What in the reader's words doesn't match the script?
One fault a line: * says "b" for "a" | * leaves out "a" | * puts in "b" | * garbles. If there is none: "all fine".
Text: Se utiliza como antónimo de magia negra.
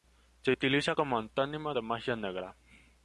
all fine